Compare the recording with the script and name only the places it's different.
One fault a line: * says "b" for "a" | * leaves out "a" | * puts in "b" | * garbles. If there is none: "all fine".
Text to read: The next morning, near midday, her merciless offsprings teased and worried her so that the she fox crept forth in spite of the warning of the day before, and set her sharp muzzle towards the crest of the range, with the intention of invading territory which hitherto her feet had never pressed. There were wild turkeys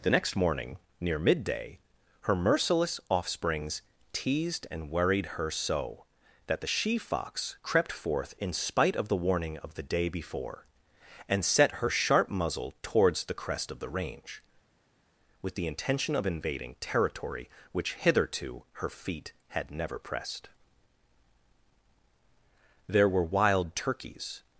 all fine